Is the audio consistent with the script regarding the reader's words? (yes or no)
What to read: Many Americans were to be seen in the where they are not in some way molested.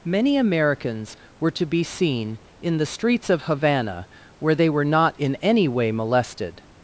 no